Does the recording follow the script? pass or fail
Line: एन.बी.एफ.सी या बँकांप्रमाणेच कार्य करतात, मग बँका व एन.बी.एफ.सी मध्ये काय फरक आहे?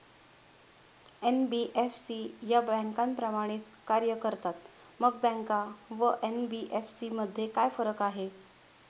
pass